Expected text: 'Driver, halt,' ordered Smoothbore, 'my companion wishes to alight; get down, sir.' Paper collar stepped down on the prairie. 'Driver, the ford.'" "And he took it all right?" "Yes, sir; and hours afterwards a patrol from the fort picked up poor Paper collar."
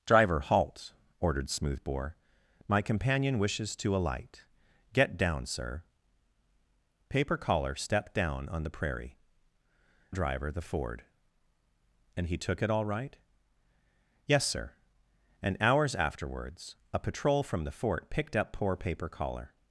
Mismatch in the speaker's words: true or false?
false